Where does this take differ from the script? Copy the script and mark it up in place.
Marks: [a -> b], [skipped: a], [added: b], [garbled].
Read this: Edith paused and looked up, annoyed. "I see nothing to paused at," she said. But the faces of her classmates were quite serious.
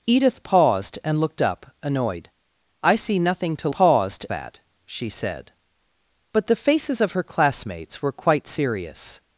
Edith paused and looked up, annoyed. "I see nothing to paused at," she said. But the faces of her classmates were quite serious.